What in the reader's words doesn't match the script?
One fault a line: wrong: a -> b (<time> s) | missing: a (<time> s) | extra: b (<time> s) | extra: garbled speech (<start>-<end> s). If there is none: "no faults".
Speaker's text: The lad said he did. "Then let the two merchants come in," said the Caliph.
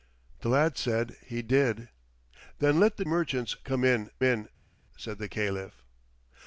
missing: two (3.0 s)
extra: in (4.2 s)